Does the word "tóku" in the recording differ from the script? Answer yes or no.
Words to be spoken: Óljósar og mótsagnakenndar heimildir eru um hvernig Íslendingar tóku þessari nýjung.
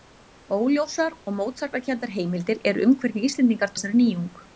yes